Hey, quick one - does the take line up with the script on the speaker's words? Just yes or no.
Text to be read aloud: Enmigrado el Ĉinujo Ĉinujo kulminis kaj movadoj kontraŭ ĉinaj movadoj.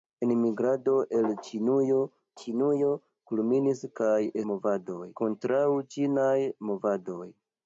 yes